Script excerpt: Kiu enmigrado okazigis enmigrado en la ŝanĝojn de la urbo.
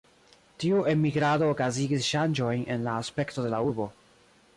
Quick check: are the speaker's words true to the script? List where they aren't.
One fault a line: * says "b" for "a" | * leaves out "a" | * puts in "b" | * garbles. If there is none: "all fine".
* says "Tiu" for "Kiu"
* says "ŝanĝojn" for "enmigrado"
* says "aspekto" for "ŝanĝojn"